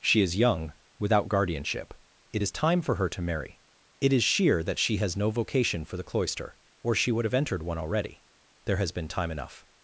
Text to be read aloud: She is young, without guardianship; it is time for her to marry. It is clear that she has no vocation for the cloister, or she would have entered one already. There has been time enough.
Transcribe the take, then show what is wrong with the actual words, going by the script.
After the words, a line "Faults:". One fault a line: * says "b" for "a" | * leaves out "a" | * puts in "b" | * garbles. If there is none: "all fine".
She is young, without guardianship; it is time for her to marry. It is sheer that she has no vocation for the cloister, or she would have entered one already. There has been time enough.
Faults:
* says "sheer" for "clear"